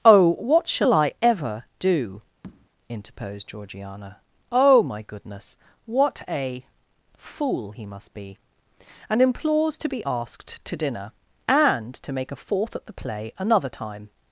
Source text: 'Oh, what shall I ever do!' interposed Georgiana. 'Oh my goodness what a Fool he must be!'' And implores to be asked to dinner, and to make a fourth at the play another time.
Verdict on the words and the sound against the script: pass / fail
fail